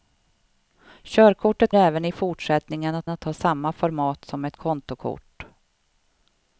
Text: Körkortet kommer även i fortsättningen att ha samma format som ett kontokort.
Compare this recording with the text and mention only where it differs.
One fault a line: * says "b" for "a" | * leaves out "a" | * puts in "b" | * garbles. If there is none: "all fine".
* leaves out "kommer"
* puts in "att"